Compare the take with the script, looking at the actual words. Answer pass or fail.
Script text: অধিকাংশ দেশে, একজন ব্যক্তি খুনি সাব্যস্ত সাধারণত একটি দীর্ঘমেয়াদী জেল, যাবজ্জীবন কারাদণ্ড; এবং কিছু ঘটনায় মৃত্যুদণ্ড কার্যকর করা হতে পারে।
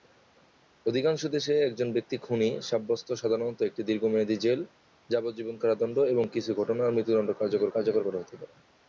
fail